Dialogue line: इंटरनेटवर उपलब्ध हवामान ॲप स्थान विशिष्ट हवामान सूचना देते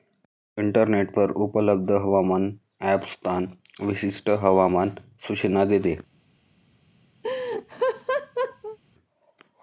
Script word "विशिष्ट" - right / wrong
right